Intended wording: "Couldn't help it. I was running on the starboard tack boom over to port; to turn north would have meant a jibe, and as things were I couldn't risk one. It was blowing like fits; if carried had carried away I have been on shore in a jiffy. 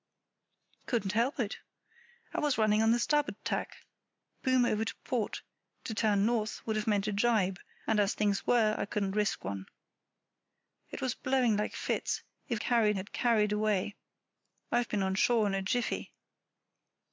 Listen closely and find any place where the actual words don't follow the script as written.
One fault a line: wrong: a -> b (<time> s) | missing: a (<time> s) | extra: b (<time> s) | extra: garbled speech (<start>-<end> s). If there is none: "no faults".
no faults